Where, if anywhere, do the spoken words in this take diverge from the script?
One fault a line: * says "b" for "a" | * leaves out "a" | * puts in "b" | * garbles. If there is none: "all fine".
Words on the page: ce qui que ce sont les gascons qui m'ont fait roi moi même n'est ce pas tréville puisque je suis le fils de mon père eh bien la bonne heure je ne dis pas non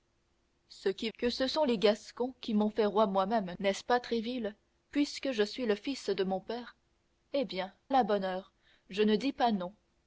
all fine